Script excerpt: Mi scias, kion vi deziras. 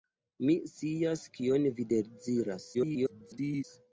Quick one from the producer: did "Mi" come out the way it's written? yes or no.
yes